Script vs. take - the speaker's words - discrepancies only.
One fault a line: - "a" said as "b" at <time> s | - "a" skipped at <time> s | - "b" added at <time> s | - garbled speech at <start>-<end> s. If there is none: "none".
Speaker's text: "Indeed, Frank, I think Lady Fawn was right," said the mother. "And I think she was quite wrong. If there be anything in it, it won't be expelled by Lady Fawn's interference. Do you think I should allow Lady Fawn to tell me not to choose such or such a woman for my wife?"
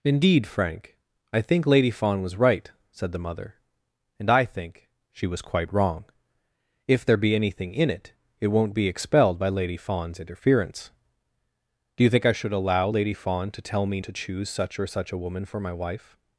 - "not" skipped at 14.0 s